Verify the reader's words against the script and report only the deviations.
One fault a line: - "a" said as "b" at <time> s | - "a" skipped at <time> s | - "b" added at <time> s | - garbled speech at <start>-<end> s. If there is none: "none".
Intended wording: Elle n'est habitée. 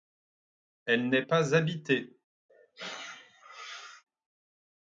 - "pas" added at 1.2 s